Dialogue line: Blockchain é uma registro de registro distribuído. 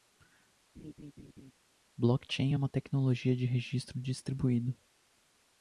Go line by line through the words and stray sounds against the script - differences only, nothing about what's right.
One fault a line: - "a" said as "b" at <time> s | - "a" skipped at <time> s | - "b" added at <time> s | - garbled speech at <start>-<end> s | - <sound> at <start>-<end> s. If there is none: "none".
- laugh at 0.7-1.5 s
- "registro" said as "tecnologia" at 2.7 s